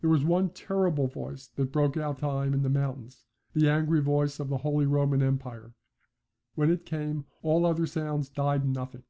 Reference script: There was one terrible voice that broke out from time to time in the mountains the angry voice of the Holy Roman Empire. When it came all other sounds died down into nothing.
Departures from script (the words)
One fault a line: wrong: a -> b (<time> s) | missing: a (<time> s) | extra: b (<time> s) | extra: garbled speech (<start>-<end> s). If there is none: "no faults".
missing: from (2.2 s)
missing: to time (2.5 s)
missing: down into (8.6 s)